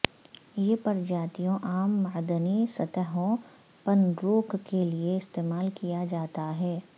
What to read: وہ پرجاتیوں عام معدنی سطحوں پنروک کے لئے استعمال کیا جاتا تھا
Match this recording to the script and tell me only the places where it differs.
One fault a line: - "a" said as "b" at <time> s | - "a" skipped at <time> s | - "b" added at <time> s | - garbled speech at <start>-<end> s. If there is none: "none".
- "وہ" said as "یہ" at 0.6 s
- "تھا" said as "ہے" at 6.6 s